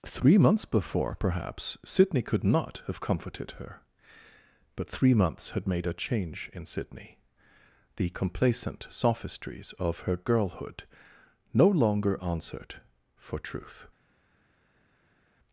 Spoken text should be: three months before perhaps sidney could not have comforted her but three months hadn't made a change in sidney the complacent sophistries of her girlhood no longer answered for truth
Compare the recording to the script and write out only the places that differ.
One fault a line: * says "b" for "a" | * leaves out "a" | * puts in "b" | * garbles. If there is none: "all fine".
* says "had" for "hadn't"